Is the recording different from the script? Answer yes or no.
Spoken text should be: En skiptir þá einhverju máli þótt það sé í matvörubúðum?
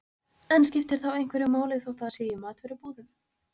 no